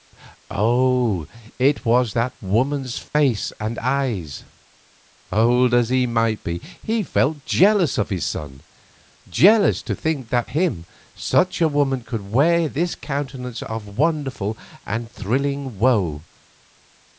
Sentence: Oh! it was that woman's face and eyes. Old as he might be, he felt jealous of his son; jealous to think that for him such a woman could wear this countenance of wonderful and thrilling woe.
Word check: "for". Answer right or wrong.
wrong